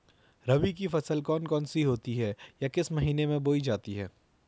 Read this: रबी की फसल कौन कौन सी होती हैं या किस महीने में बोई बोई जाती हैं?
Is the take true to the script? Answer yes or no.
no